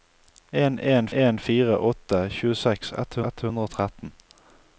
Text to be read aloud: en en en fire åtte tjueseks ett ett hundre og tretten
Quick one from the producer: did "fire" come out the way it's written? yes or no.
yes